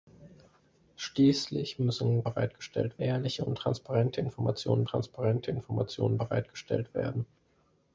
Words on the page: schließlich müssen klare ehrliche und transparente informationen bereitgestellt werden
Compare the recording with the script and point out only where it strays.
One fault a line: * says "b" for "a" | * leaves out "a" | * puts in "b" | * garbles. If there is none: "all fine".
* says "bereitgestellt" for "klare"
* puts in "transparente informationen"